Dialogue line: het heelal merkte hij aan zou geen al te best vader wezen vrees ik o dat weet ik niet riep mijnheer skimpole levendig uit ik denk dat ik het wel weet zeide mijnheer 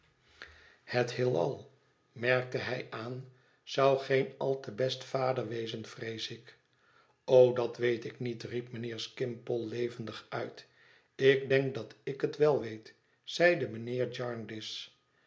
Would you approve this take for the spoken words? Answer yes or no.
yes